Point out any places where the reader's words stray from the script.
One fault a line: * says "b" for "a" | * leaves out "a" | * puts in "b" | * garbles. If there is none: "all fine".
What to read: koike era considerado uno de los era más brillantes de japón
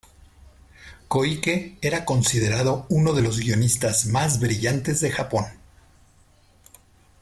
* says "guionistas" for "era"